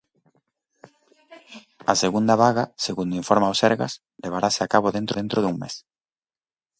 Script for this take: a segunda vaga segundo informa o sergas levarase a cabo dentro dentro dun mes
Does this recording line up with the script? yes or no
yes